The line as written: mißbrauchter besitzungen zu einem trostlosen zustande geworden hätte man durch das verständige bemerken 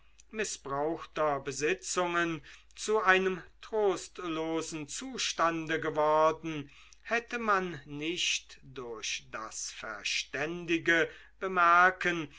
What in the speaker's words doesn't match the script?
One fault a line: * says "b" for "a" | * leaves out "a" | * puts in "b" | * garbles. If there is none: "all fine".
* puts in "nicht"